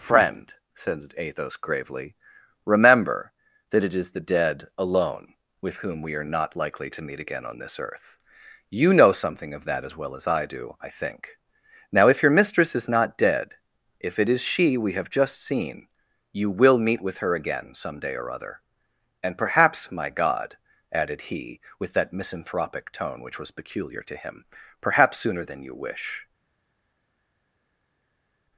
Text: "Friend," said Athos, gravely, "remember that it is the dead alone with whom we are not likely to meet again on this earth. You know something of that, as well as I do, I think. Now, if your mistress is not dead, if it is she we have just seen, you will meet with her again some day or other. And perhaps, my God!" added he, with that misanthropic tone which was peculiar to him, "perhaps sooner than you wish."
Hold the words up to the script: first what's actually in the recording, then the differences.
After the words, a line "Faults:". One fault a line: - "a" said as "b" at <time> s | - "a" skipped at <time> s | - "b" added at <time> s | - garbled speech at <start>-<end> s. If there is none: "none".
"Friend," said Athos, gravely, "remember that it is the dead alone with whom we are not likely to meet again on this earth. You know something of that, as well as I do, I think. Now, if your mistress is not dead, if it is she we have just seen, you will meet with her again some day or other. And perhaps, my God!" added he, with that misanthropic tone which was peculiar to him, "perhaps sooner than you wish."
Faults:
none